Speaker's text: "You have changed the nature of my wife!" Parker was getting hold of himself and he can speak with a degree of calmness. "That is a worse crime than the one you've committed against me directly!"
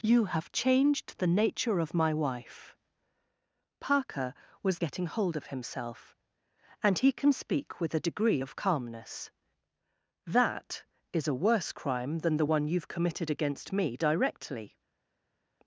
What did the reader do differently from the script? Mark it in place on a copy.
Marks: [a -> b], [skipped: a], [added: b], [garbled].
"You have changed the nature of my wife!" Parker was getting hold of himself and he can speak with a degree of calmness. "That is a worse crime than the one you've committed against me directly!"